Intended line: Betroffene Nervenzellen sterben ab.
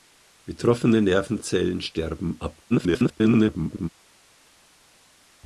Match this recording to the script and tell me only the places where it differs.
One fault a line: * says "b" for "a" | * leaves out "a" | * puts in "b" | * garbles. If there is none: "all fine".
* garbles